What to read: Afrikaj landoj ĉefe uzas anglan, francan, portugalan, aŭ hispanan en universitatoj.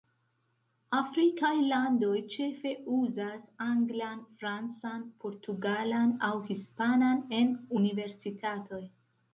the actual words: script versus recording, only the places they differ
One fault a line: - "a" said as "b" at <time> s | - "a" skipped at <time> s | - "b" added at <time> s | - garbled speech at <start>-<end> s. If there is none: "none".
none